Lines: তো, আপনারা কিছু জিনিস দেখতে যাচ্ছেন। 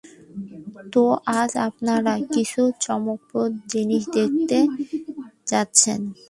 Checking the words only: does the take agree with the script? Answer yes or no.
no